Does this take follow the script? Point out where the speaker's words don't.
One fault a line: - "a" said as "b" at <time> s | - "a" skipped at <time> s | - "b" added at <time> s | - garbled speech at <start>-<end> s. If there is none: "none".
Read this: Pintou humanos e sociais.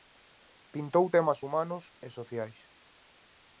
- "temas" added at 1.1 s